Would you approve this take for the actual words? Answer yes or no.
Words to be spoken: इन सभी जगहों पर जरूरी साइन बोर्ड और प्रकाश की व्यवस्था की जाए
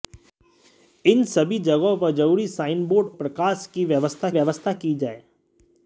no